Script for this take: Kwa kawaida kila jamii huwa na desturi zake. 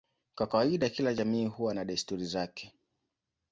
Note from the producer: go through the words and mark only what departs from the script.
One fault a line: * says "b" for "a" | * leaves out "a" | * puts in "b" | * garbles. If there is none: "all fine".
all fine